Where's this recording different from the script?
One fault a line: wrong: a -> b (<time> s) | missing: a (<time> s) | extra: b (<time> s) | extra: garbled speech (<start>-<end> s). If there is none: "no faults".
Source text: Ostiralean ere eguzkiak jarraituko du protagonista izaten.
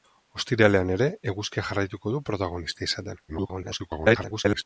extra: garbled speech (3.3-4.6 s)